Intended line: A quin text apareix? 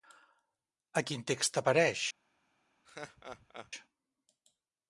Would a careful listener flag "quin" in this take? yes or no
no